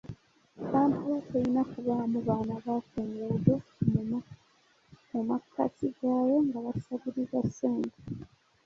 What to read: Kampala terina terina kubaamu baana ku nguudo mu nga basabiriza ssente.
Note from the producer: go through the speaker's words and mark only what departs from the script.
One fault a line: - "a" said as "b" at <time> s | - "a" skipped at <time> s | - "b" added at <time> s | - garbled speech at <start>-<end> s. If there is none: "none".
- "terina" skipped at 1.6 s
- "ba" added at 2.6 s
- "makkati gaayo" added at 5.3 s